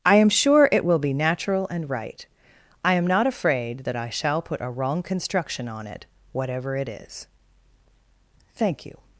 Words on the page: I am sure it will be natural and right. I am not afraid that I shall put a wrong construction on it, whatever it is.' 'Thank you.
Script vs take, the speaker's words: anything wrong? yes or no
no